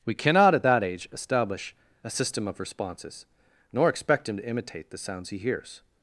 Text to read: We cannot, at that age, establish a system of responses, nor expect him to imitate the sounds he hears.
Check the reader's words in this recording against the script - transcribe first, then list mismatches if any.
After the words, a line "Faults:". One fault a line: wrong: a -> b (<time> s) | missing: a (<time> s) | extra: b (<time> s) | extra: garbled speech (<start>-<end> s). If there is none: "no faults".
We cannot, at that age, establish a system of responses, nor expect him to imitate the sounds he hears.
Faults:
no faults